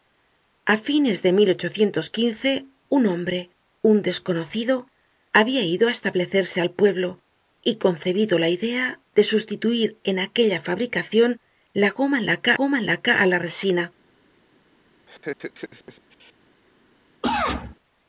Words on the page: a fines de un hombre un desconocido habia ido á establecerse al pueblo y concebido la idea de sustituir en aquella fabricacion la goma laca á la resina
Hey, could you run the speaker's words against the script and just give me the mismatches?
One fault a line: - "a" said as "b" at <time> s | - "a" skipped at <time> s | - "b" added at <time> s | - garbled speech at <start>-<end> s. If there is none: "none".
- "goma laca" added at 12.6 s